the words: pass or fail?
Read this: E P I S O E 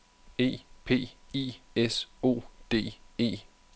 fail